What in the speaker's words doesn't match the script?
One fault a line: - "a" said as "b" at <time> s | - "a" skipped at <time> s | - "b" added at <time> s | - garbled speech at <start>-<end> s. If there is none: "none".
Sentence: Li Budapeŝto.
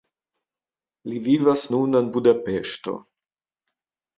- "vivas nun en" added at 1.3 s